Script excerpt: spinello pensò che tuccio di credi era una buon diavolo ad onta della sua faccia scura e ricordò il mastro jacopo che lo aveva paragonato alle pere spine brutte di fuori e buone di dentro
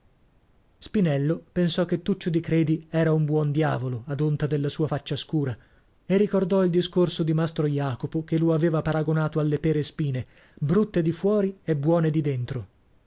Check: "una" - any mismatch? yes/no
yes